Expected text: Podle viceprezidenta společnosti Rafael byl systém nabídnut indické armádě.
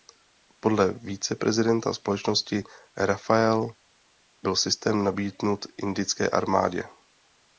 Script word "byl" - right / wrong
right